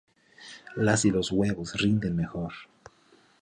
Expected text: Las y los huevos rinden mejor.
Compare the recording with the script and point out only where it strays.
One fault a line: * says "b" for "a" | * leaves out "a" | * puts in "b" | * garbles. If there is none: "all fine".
all fine